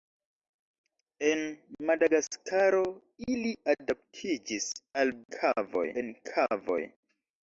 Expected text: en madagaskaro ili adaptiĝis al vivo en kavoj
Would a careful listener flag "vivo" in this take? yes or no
yes